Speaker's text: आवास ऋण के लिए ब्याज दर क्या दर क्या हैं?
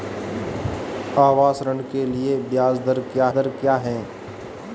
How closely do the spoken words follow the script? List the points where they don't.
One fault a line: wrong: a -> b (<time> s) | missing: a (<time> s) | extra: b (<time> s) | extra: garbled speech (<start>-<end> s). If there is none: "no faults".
no faults